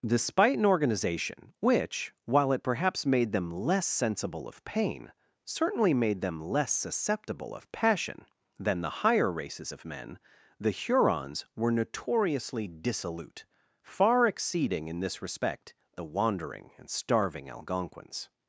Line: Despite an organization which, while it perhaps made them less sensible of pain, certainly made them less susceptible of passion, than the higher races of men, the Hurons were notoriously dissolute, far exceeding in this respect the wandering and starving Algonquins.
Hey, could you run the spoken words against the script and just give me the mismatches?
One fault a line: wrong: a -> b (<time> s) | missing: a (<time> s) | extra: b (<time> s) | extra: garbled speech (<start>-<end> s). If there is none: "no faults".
no faults